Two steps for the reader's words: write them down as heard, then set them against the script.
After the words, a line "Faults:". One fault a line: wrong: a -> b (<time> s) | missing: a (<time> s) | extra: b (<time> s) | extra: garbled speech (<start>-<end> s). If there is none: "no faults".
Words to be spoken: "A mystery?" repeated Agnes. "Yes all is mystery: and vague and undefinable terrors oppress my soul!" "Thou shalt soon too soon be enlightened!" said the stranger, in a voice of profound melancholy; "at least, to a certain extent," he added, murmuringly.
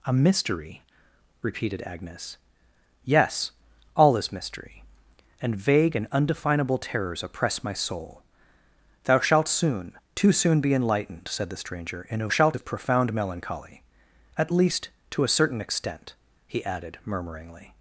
"A mystery?" repeated Agnes. "Yes all is mystery: and vague and undefinable terrors oppress my soul!" "Thou shalt soon too soon be enlightened!" said the stranger, in a shalt of profound melancholy; "at least, to a certain extent," he added, murmuringly.
Faults:
wrong: voice -> shalt (12.3 s)